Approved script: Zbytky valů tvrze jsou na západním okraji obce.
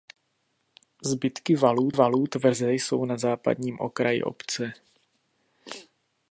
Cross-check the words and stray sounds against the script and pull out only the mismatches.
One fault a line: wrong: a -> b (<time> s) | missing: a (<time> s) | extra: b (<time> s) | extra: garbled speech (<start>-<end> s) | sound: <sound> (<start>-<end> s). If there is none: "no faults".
extra: valů (1.9 s)